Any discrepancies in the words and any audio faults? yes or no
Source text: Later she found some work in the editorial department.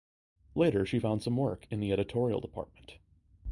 no